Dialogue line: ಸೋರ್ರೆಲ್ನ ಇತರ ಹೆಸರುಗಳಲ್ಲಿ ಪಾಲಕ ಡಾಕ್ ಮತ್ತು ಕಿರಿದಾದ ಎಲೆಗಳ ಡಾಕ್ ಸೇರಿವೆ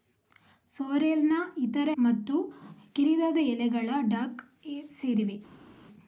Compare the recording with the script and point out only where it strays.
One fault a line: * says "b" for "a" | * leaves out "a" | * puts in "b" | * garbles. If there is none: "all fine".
* leaves out "ಹೆಸರುಗಳಲ್ಲಿ ಪಾಲಕ ಡಾಕ್"